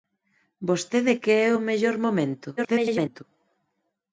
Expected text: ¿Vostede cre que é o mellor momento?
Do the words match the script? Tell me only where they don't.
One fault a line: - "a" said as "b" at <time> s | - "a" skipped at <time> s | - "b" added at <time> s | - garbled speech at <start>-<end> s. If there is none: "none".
- "cre" skipped at 1.1 s
- garbled speech at 2.6-3.2 s